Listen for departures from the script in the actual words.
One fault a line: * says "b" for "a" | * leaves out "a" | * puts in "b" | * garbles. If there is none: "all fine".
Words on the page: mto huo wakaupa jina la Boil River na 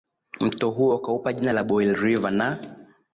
all fine